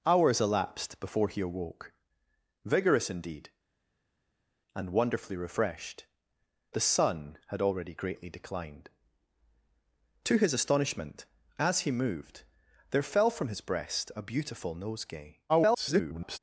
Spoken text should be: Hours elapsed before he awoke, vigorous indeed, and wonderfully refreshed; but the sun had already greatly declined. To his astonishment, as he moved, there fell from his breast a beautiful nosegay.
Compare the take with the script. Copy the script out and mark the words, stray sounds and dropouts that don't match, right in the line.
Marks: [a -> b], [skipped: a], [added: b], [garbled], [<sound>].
Hours elapsed before he awoke, vigorous indeed, and wonderfully refreshed; [skipped: but] the sun had already greatly declined. To his astonishment, as he moved, there fell from his breast a beautiful nosegay. [garbled]